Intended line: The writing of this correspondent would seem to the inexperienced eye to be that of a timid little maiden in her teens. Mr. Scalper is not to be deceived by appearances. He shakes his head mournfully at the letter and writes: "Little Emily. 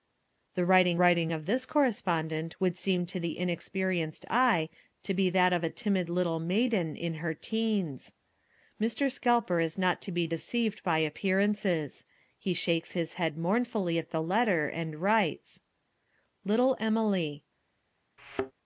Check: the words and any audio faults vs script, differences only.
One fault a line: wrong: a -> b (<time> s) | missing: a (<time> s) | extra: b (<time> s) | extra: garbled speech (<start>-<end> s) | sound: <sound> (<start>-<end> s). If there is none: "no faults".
extra: writing (1.0 s)
sound: thud (18.2-18.5 s)